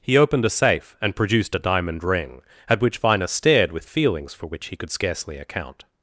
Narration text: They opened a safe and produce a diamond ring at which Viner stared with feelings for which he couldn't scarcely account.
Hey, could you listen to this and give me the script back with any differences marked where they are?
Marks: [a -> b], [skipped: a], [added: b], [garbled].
[They -> He] opened a safe and [produce -> produced] a diamond ring at which Viner stared with feelings for which he [couldn't -> could] scarcely account.